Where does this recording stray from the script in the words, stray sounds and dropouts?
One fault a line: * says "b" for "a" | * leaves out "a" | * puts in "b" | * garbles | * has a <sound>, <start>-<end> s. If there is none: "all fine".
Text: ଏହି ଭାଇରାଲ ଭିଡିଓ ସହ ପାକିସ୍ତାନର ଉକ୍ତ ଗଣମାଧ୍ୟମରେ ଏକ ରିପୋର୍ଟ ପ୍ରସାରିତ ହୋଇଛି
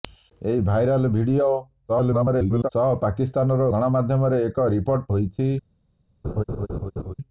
* garbles
* leaves out "ଉକ୍ତ"
* leaves out "ପ୍ରସାରିତ"
* has a laugh, 6.2-7.1 s